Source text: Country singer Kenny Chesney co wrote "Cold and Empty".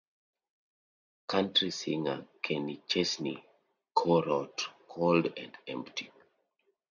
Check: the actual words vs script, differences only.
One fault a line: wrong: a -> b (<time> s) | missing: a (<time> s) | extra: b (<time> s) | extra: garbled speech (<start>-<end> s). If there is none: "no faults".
no faults